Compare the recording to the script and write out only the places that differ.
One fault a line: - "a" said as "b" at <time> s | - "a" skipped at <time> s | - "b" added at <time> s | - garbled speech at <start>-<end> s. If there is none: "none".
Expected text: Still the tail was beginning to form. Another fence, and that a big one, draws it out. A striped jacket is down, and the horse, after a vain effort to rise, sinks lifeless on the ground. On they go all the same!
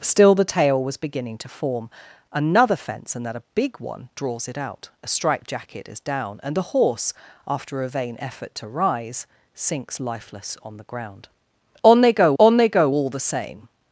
- "on they go" added at 12.4 s